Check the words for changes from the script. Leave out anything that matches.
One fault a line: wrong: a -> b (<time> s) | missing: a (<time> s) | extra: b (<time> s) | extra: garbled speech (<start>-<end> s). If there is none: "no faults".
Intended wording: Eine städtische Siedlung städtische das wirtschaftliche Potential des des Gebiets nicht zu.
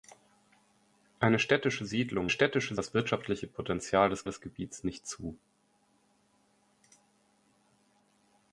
no faults